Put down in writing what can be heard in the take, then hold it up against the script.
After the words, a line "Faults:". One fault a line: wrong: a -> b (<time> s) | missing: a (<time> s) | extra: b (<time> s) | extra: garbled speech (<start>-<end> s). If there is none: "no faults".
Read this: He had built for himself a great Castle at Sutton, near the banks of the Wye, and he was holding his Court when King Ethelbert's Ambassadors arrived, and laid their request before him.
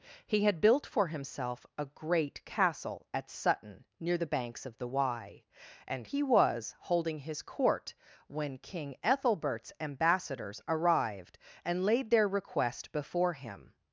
He had built for himself a great Castle at Sutton, near the banks of the Wye, and he was holding his Court when King Ethelbert's Ambassadors arrived, and laid their request before him.
Faults:
no faults